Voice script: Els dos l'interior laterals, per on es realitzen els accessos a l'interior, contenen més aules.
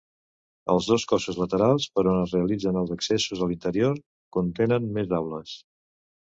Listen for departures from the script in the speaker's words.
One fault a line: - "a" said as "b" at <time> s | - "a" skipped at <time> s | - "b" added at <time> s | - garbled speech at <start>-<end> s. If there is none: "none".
- "l'interior" said as "cossos" at 1.1 s